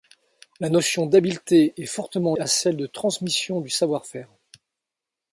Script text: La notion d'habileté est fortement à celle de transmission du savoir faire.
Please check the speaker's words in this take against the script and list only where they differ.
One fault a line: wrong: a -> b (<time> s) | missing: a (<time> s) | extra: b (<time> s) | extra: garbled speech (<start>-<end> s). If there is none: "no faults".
no faults